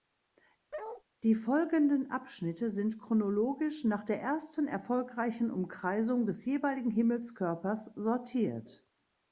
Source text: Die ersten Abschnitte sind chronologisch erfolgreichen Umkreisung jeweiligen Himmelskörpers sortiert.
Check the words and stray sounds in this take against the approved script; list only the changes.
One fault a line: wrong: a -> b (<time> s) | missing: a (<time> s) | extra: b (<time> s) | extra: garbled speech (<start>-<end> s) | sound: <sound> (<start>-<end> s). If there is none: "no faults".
sound: bark (0.7-1.0 s)
wrong: ersten -> folgenden (1.4 s)
extra: nach der ersten (3.8 s)
extra: des (6.3 s)